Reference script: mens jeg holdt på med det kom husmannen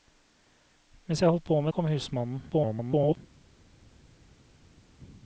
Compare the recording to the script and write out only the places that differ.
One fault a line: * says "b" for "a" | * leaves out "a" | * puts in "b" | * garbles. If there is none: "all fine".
* leaves out "det"
* garbles